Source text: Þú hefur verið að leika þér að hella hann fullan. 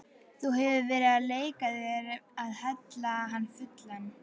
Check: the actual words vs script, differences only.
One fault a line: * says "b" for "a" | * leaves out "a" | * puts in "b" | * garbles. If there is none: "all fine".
all fine